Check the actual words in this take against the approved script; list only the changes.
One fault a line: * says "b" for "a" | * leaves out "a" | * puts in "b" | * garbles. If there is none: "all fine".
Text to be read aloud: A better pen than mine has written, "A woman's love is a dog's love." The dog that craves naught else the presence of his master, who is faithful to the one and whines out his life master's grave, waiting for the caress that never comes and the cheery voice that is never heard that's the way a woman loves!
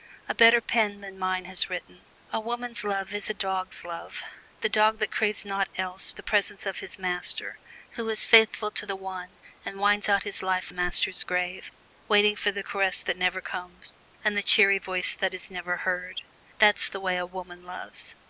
all fine